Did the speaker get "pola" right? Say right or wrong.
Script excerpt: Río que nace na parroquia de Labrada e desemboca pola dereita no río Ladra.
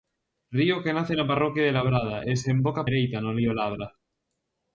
wrong